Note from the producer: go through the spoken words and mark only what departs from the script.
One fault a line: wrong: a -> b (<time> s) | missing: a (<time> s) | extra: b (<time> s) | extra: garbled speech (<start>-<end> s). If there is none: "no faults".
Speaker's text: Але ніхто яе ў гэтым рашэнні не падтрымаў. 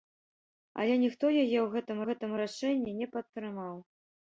extra: гэтым (2.1 s)